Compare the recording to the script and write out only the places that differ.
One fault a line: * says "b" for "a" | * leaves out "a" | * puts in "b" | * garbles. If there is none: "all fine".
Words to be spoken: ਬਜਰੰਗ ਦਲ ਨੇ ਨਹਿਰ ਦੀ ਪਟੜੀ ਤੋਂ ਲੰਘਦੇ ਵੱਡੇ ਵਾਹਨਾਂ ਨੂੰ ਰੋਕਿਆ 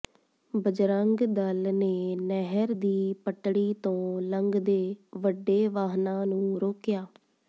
all fine